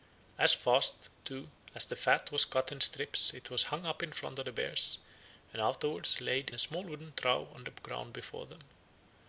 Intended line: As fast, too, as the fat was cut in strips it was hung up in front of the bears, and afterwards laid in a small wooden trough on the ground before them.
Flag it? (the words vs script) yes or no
yes